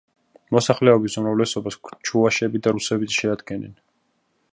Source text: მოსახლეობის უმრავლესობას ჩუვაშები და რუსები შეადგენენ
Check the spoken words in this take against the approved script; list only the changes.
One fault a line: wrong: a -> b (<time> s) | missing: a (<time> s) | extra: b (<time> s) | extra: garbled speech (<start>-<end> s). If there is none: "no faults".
no faults